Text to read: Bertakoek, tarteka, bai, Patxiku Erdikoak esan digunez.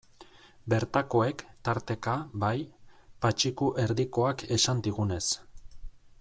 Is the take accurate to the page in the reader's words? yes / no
yes